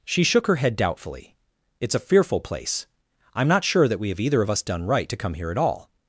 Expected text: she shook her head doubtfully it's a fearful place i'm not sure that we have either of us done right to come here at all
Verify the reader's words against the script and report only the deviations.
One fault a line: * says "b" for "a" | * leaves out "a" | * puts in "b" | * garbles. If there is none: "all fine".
all fine